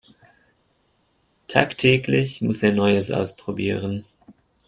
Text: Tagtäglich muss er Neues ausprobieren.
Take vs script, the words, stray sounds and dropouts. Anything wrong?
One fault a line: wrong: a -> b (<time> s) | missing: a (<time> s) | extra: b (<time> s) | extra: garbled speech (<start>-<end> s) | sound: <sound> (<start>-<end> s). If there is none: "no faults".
no faults